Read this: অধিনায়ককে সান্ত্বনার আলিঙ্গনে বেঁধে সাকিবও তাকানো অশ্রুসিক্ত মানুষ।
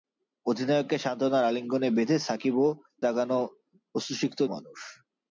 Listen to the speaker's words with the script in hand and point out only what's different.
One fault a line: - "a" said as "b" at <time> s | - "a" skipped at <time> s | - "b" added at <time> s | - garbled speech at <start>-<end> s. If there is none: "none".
none